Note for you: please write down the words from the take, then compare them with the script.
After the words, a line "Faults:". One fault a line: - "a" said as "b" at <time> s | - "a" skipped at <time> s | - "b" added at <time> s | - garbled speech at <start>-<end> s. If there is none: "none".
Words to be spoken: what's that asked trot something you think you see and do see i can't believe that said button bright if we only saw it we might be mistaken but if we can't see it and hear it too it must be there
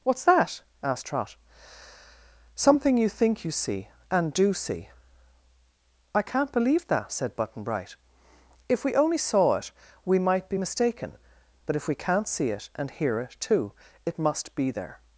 what's that asked trot something you think you see and do see i can't believe that said button bright if we only saw it we might be mistaken but if we can't see it and hear it too it must be there
Faults:
none